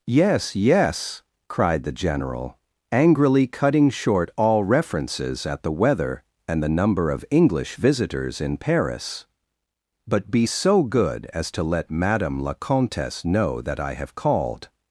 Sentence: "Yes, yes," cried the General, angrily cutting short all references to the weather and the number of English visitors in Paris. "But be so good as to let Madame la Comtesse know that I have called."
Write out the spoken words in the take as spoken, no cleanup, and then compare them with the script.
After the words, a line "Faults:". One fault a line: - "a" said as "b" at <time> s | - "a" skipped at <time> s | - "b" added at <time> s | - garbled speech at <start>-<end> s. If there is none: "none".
"Yes, yes," cried the General, angrily cutting short all references at the weather and the number of English visitors in Paris. "But be so good as to let Madame la Comtesse know that I have called."
Faults:
- "to" said as "at" at 5.5 s